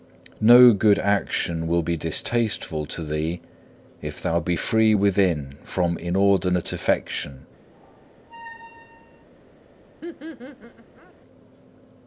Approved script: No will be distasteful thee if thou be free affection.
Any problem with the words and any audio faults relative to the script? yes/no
yes